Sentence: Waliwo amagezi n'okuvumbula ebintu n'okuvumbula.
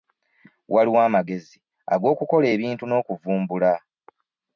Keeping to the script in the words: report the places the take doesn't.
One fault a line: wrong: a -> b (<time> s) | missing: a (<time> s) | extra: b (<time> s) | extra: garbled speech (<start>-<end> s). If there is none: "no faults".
wrong: n'okuvumbula -> ag'okukola (1.9 s)